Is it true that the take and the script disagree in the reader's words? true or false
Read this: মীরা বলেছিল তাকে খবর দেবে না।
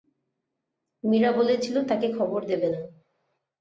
false